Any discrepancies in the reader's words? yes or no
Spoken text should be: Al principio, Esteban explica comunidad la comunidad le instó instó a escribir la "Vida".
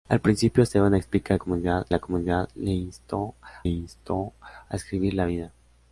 no